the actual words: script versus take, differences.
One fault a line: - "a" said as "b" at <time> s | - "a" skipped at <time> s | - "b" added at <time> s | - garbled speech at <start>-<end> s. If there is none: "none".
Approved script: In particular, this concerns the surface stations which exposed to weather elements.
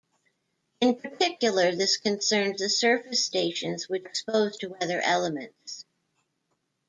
none